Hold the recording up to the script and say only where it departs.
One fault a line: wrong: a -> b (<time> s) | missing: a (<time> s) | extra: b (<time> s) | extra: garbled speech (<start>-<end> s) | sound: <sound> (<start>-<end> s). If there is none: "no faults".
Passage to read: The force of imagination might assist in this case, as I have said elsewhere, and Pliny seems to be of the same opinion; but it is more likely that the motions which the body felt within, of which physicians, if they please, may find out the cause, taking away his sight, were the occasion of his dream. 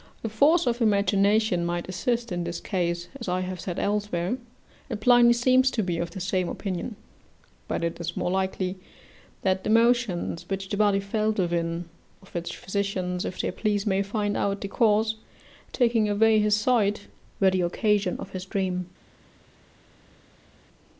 no faults